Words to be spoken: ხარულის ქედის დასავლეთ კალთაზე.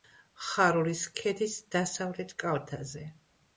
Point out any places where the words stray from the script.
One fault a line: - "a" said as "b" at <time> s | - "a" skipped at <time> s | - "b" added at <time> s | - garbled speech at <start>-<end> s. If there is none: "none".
none